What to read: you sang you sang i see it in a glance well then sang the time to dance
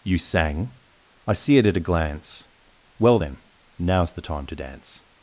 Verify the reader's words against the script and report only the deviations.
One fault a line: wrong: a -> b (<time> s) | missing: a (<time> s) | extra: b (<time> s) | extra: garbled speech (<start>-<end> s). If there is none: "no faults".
missing: you sang (0.7 s)
wrong: in -> at (1.7 s)
wrong: sang -> now's (3.8 s)